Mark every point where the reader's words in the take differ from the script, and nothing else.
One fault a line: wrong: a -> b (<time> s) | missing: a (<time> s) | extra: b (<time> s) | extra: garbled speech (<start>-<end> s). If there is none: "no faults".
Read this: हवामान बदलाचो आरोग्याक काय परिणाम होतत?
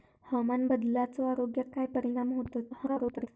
extra: garbled speech (2.7-3.3 s)